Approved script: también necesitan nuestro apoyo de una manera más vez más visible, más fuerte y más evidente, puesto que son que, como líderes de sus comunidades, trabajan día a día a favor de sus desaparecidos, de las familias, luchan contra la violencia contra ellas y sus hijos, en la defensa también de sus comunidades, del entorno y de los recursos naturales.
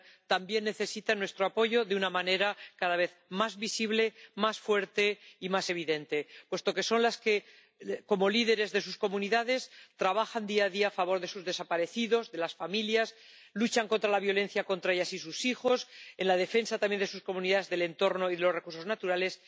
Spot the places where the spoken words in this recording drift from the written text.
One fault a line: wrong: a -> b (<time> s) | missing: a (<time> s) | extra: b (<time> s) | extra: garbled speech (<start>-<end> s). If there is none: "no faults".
wrong: más -> cada (2.8 s)
extra: las (7.0 s)